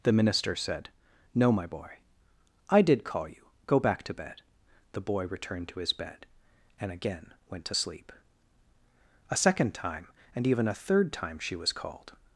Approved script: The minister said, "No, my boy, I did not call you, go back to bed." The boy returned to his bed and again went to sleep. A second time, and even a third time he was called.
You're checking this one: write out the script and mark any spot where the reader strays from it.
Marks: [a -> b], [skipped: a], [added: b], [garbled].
The minister said, "No, my boy, I did [skipped: not] call you, go back to bed." The boy returned to his bed and again went to sleep. A second time, and even a third time [he -> she] was called.